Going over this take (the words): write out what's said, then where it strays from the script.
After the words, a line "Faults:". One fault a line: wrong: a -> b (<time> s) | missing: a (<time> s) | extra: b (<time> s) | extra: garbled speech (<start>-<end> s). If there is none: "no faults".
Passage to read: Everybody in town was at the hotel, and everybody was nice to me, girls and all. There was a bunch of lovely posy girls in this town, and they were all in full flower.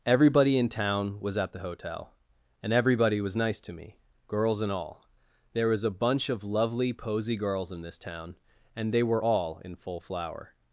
Everybody in town was at the hotel, and everybody was nice to me, girls and all. There was a bunch of lovely posy girls in this town, and they were all in full flower.
Faults:
no faults